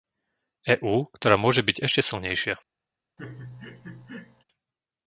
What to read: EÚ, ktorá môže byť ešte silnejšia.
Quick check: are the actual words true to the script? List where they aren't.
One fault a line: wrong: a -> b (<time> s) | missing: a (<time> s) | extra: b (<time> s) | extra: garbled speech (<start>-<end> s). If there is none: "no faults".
no faults